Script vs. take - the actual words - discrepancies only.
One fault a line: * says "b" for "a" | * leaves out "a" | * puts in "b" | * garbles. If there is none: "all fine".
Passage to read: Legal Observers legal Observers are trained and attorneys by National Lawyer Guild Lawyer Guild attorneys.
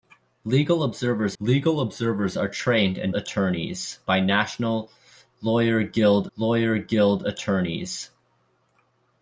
all fine